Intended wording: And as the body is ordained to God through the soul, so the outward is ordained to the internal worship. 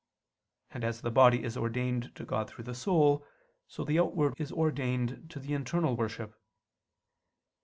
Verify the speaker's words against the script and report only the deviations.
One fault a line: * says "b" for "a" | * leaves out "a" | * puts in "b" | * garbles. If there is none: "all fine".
all fine